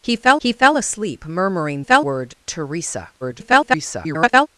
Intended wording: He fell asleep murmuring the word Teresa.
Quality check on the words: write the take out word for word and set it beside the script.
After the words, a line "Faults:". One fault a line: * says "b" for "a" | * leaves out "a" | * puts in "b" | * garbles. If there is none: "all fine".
He fell he fell asleep murmuring fell word Teresa. [garbled]
Faults:
* puts in "he fell"
* says "fell" for "the"
* garbles